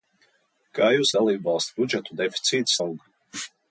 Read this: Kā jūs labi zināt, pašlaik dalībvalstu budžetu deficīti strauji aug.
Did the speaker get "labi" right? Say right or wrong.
wrong